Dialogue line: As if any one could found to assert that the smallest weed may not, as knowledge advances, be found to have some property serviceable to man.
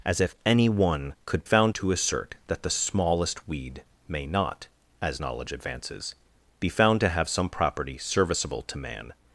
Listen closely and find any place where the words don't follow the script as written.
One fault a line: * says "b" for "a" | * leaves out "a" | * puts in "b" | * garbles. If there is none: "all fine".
all fine